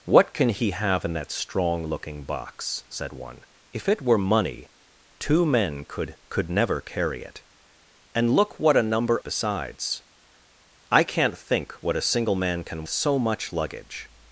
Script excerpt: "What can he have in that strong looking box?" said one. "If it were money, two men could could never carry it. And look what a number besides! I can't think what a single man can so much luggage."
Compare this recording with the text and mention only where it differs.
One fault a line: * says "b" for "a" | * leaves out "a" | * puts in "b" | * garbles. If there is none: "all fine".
all fine